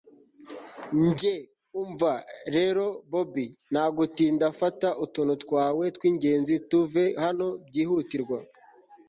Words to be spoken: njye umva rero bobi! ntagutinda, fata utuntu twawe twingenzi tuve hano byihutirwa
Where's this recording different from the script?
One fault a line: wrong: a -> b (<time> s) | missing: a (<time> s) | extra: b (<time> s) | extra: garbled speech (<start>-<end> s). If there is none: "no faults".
no faults